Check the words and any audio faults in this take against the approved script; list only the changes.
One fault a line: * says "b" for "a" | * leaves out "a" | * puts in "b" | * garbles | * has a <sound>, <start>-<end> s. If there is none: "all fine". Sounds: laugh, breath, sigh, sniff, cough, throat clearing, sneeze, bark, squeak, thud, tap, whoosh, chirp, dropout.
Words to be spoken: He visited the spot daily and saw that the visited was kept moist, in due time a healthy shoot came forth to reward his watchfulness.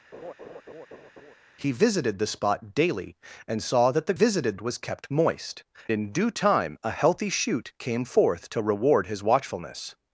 * has a laugh, 0.1-1.3 s